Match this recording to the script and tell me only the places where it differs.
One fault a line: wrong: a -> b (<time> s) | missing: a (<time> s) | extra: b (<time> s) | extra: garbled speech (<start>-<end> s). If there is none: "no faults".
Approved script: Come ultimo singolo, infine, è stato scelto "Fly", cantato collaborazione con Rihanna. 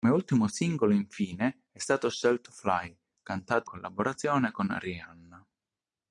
no faults